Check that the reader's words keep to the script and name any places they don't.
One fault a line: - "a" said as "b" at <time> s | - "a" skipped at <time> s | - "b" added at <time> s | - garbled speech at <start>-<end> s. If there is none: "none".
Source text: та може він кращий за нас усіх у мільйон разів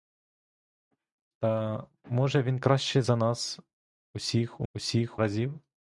- "мільйон" said as "усіх" at 4.7 s